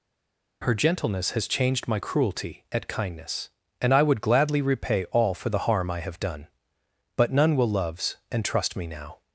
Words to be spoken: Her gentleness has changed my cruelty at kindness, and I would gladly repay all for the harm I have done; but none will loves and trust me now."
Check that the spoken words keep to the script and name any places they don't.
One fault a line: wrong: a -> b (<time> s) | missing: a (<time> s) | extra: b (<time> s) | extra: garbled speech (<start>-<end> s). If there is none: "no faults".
no faults